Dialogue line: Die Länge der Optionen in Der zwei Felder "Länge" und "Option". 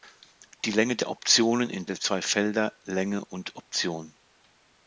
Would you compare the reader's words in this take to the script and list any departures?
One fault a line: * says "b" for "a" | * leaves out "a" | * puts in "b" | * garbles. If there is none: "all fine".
all fine